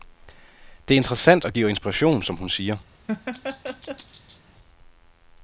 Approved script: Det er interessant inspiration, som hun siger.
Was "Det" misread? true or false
false